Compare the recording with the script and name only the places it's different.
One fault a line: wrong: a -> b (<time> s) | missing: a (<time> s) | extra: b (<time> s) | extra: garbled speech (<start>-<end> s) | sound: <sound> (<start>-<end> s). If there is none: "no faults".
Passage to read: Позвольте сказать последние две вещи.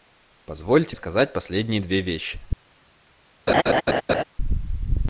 sound: laugh (3.5-4.2 s)